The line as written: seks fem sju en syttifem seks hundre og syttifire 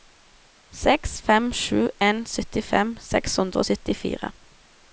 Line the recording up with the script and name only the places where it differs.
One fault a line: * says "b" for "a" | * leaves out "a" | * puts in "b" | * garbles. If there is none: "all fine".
all fine